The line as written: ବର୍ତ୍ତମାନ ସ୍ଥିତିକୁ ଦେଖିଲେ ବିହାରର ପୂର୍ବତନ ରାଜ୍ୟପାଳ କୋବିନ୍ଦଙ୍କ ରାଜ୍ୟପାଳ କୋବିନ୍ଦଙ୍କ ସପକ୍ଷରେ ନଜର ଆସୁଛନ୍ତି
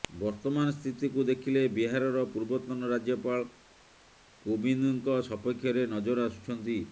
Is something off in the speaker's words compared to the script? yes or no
yes